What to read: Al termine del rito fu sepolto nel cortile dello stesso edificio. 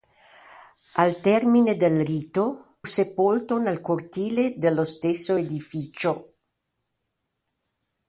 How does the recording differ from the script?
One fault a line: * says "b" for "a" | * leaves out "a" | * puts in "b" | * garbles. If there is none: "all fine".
* leaves out "fu"